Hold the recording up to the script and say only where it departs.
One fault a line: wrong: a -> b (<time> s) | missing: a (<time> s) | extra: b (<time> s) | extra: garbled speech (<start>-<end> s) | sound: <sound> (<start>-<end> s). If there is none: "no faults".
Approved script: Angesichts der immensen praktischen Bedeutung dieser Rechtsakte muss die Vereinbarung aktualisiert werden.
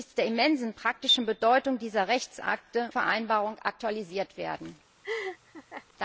missing: muss die (2.9 s)
sound: laugh (5.0-5.9 s)